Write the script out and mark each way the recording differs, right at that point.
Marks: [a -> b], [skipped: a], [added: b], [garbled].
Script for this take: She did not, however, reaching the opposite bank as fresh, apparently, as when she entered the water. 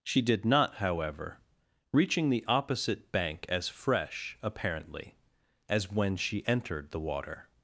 She did not, however, reaching the opposite bank as fresh, apparently, as when she entered the water.